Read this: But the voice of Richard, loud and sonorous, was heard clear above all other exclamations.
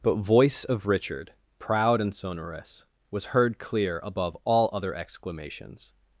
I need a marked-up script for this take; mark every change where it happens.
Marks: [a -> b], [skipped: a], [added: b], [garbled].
But [skipped: the] voice of Richard, [loud -> proud] and sonorous, was heard clear above all other exclamations.